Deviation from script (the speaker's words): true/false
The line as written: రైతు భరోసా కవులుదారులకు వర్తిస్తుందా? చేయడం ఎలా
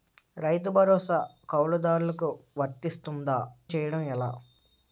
false